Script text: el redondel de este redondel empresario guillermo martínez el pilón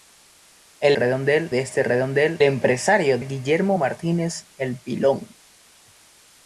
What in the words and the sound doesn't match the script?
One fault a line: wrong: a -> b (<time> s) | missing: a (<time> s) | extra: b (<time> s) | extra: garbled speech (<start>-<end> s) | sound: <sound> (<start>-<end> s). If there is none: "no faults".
no faults